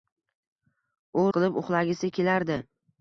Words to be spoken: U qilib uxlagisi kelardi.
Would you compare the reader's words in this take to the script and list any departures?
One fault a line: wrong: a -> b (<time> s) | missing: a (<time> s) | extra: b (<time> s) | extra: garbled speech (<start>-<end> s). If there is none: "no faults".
no faults